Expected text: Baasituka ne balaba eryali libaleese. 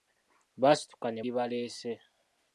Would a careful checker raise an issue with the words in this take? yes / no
yes